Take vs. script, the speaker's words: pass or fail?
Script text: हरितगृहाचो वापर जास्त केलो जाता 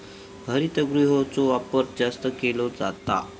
pass